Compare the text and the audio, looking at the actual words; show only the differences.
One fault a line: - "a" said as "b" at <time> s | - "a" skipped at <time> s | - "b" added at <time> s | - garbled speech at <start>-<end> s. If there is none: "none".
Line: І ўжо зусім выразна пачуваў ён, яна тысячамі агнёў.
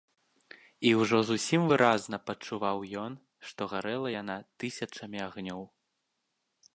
- "што гарэла" added at 3.5 s